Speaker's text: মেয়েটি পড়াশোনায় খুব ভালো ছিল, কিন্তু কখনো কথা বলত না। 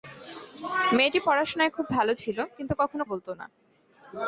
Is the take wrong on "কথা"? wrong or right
wrong